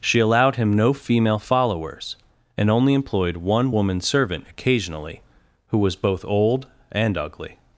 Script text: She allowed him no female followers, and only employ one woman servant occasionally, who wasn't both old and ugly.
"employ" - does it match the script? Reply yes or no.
no